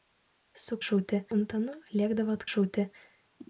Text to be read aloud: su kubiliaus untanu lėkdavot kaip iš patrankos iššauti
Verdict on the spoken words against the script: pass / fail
fail